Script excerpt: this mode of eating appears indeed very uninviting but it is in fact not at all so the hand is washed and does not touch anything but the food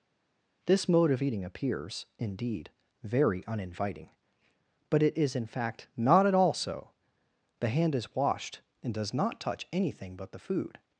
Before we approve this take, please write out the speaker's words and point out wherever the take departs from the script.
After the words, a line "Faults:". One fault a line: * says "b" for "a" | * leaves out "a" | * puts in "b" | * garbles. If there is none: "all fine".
this mode of eating appears indeed very uninviting but it is in fact not at all so the hand is washed and does not touch anything but the food
Faults:
all fine